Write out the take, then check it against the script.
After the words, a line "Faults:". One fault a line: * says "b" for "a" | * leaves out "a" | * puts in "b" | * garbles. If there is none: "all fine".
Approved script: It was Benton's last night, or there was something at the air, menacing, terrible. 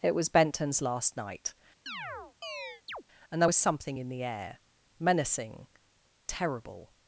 It was Benton's last night, and there was something in the air, menacing, terrible.
Faults:
* says "and" for "or"
* says "in" for "at"